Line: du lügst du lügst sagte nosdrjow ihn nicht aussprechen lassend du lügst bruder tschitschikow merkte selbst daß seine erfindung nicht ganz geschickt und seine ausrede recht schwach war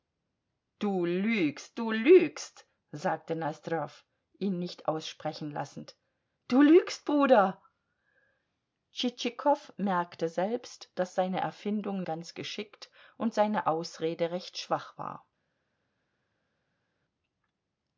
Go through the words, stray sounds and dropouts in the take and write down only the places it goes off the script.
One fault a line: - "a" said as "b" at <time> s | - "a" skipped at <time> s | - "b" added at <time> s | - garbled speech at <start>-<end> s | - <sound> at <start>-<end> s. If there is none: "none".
- "nicht" skipped at 12.0 s